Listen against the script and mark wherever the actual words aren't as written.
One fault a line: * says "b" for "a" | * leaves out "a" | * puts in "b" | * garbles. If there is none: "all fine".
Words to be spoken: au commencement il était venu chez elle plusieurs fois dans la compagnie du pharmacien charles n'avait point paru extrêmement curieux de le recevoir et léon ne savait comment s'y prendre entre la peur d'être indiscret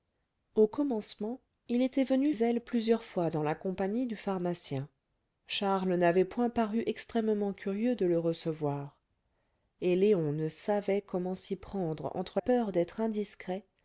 * leaves out "chez"
* leaves out "la"